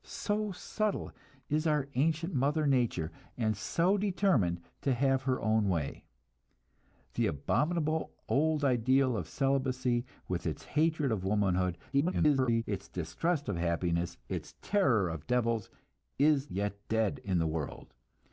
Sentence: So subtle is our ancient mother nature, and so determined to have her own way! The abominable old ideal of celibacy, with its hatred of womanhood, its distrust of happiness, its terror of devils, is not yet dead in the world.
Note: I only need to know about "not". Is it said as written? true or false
false